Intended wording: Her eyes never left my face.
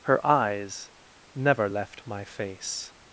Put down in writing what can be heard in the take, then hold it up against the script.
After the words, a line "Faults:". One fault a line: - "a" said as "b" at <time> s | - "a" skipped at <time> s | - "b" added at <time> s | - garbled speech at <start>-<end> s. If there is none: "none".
Her eyes never left my face.
Faults:
none